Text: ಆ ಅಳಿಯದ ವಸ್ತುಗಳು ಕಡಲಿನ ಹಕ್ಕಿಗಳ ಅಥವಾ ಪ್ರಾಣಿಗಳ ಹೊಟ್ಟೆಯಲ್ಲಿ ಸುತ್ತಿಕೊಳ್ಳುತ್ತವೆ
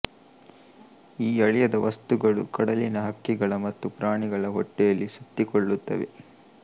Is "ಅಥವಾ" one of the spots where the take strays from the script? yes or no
yes